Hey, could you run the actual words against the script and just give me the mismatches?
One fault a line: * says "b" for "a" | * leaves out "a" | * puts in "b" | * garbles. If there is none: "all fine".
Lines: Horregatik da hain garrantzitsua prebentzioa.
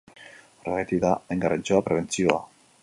all fine